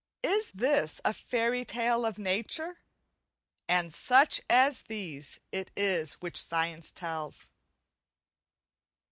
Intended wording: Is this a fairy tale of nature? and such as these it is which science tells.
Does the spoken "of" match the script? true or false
true